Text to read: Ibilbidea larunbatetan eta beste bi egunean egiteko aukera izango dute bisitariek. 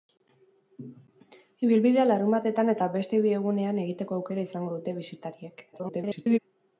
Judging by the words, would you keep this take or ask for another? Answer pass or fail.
fail